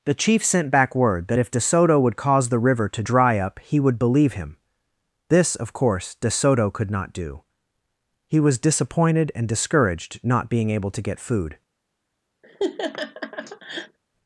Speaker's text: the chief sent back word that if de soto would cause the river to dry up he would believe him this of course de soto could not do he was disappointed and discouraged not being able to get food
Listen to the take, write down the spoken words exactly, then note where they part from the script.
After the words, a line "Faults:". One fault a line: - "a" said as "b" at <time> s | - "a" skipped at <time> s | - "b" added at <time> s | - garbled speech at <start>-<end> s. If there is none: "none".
the chief sent back word that if de soto would cause the river to dry up he would believe him this of course de soto could not do he was disappointed and discouraged not being able to get food
Faults:
none